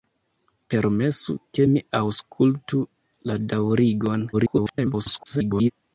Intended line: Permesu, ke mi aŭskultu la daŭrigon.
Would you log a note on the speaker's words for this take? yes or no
yes